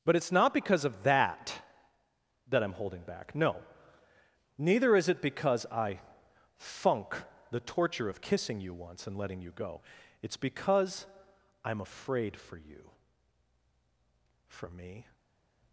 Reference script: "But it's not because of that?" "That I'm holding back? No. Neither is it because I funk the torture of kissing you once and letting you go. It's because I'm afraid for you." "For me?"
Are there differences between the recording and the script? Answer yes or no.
no